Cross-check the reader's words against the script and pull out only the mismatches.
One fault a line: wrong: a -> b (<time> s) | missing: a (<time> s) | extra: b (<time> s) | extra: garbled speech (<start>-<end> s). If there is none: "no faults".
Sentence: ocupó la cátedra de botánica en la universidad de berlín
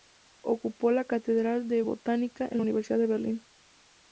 no faults